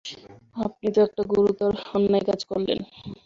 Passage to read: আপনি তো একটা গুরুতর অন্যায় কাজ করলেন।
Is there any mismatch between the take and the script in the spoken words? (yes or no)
no